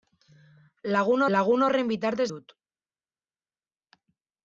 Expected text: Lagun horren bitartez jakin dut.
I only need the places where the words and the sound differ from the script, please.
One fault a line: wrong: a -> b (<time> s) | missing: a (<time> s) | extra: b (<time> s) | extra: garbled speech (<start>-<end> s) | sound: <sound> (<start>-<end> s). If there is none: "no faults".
extra: lagun (1.3 s)
missing: jakin (2.3 s)